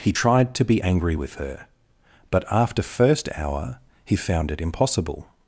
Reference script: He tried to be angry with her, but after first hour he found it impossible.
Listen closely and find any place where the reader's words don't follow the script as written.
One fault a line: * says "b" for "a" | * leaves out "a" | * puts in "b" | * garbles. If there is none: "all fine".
all fine